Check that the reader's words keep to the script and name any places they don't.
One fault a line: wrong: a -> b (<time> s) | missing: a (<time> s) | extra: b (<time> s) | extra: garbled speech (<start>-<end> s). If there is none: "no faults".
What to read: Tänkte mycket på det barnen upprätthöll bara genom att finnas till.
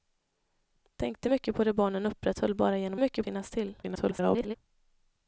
wrong: att -> mycket (3.0 s)
extra: garbled speech (3.8-4.5 s)